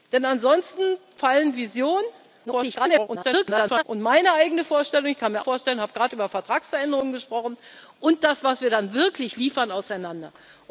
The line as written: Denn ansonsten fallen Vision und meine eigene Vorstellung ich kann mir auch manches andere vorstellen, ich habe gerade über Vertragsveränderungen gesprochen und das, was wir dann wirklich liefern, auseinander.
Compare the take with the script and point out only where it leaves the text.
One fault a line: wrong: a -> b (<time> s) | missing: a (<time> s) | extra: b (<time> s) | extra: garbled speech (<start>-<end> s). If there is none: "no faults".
extra: garbled speech (2.5-3.8 s)
missing: auch manches andere (5.4 s)